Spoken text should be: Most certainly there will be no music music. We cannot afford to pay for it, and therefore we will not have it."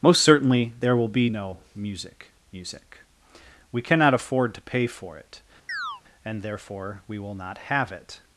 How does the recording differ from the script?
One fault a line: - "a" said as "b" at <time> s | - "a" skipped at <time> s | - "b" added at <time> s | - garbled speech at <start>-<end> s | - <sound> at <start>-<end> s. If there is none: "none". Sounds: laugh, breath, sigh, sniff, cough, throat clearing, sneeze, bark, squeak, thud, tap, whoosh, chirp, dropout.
- chirp at 5.7-6.0 s